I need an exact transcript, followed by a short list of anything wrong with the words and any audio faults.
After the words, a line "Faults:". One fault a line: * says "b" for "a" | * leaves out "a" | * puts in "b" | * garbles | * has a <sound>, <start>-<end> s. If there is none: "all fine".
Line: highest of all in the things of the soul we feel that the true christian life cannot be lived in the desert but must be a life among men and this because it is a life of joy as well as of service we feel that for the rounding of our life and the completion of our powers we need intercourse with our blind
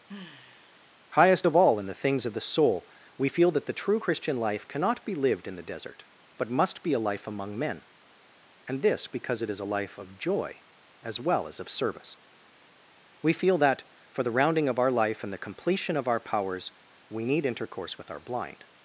highest of all in the things of the soul we feel that the true christian life cannot be lived in the desert but must be a life among men and this because it is a life of joy as well as of service we feel that for the rounding of our life and the completion of our powers we need intercourse with our blind
Faults:
* has a sigh, 0.1-1.0 s